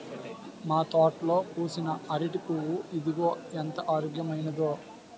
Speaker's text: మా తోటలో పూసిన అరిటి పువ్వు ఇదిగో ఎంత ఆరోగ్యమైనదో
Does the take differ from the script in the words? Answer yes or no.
no